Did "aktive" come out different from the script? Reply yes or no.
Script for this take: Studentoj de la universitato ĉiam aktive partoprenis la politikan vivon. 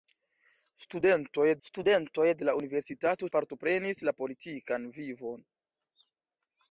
yes